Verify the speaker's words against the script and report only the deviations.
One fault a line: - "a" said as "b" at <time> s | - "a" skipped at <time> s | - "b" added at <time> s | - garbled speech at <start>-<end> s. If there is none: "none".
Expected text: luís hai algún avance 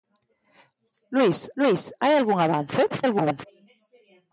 - "luís" added at 1.6 s
- garbled speech at 2.9-3.4 s